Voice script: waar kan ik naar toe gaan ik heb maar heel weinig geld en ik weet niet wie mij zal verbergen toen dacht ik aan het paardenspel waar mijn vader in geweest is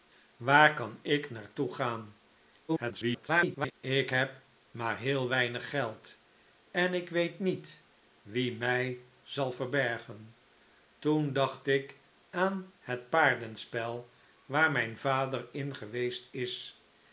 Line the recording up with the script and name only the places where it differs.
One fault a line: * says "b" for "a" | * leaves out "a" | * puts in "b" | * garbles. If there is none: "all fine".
* garbles